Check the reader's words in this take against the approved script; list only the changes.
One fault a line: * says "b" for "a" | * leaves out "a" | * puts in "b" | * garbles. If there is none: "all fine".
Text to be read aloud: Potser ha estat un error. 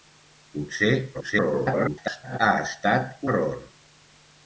* garbles
* leaves out "un"